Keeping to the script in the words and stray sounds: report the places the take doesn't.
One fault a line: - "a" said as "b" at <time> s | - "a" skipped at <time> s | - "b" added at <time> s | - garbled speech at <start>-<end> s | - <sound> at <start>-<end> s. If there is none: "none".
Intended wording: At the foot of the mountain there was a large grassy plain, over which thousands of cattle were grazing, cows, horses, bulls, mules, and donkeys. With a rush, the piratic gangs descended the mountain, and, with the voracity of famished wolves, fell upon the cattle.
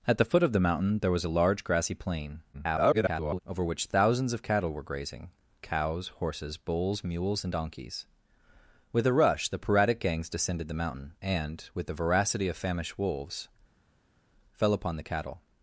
- garbled speech at 2.5-3.4 s